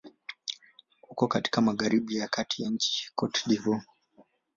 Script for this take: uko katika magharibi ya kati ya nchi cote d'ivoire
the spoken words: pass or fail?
pass